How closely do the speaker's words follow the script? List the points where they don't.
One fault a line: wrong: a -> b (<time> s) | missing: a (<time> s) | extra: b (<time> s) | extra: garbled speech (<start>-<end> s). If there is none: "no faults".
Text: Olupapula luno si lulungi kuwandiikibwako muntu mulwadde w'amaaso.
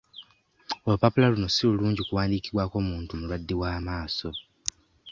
no faults